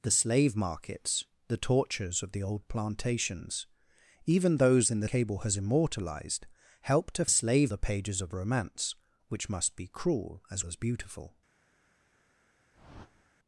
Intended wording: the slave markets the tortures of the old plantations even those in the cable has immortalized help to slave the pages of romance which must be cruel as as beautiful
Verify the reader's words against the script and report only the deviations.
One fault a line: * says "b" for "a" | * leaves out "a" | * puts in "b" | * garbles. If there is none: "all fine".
all fine